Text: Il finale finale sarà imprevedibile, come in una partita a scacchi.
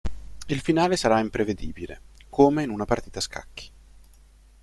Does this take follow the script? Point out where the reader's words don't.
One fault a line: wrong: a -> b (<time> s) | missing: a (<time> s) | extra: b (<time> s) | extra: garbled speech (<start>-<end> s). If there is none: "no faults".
missing: finale (1.0 s)